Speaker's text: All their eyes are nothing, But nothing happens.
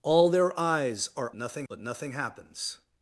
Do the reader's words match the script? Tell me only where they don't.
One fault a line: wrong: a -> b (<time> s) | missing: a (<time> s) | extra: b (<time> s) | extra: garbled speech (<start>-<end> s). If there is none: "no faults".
no faults